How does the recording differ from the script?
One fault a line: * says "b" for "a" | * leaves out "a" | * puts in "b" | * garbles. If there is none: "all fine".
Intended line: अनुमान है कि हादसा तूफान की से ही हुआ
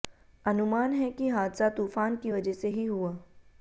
* puts in "वजह"